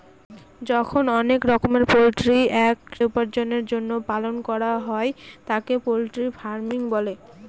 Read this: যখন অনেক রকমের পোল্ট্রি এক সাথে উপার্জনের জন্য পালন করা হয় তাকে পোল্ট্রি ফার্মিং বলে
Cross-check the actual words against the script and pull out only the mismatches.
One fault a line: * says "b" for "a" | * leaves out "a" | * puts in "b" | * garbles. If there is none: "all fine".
* leaves out "সাথে"